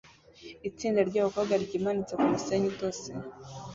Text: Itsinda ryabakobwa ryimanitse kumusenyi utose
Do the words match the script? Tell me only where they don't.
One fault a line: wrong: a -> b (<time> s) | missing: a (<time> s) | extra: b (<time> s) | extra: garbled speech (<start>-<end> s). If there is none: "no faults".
no faults